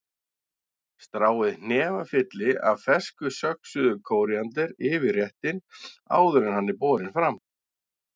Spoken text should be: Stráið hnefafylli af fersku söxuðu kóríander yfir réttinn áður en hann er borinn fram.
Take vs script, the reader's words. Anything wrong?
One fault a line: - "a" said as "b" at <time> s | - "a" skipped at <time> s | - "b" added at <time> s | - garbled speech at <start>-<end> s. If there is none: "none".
none